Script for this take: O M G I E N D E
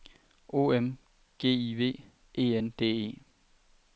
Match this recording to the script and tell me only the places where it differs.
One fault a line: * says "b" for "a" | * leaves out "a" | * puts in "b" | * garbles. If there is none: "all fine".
* puts in "V"